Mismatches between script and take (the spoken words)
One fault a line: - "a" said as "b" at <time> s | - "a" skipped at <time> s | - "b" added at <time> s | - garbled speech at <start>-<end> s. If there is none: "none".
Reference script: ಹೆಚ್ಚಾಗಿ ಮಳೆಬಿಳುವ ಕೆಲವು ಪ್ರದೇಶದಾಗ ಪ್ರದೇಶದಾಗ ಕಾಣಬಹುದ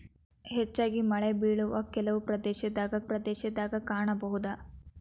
none